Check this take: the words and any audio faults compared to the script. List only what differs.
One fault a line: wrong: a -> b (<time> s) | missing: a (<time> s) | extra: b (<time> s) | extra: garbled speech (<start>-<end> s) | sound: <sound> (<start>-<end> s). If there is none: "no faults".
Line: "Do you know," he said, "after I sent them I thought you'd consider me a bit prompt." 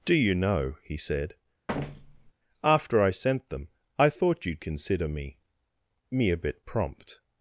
sound: thud (1.7-2.3 s)
extra: me (6.1 s)